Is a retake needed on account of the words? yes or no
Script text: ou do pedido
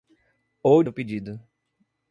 no